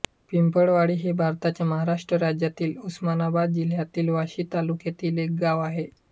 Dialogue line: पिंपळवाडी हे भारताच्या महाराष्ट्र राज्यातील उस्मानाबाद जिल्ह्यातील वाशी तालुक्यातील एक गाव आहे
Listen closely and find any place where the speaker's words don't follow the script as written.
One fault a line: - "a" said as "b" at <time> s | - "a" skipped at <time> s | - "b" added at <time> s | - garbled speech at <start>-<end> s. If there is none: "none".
none